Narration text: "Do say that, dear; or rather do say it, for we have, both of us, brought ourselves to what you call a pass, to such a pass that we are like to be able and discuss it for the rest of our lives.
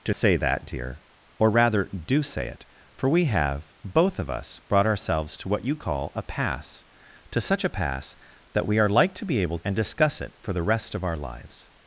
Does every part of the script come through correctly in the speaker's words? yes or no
yes